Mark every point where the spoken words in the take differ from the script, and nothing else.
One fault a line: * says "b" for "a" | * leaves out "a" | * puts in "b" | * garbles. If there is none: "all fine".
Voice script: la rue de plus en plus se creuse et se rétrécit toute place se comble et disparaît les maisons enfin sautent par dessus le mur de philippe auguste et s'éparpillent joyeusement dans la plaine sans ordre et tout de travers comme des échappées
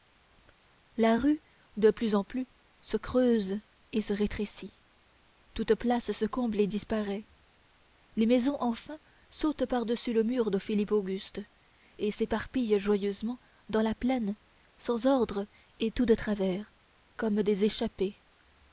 all fine